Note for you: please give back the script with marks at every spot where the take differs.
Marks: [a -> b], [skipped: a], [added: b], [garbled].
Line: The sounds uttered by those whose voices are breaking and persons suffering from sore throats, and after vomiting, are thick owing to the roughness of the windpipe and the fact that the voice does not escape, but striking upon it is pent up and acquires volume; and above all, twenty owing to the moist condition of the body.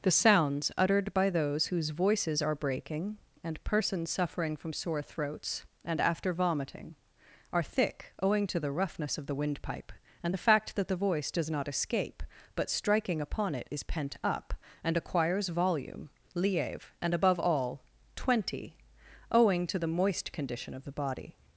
The sounds uttered by those whose voices are breaking and persons suffering from sore throats, and after vomiting, are thick owing to the roughness of the windpipe and the fact that the voice does not escape, but striking upon it is pent up and acquires volume; [added: lieve] and above all, twenty owing to the moist condition of the body.